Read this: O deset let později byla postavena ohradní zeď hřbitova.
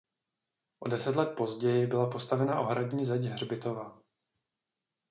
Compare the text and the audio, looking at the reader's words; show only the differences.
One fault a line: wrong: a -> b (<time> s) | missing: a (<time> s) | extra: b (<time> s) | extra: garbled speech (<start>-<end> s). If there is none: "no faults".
no faults